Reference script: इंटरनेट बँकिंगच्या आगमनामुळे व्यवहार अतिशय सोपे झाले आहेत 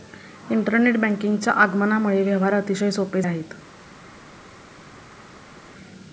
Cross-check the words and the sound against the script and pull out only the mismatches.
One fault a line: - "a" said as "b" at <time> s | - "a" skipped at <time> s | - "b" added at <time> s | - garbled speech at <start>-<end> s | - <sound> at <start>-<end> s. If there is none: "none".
- "झाले" skipped at 3.2 s